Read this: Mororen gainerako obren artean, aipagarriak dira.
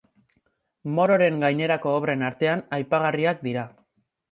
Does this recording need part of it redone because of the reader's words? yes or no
no